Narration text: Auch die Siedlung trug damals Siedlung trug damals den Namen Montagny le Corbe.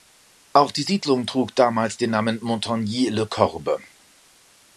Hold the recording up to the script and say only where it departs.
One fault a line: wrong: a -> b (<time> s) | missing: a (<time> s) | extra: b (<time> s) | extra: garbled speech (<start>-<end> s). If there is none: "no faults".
missing: Siedlung trug damals (2.0 s)